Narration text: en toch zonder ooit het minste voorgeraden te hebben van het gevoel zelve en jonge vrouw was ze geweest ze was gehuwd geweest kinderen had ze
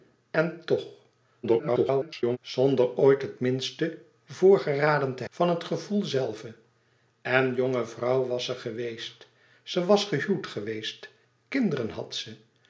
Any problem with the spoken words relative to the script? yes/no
yes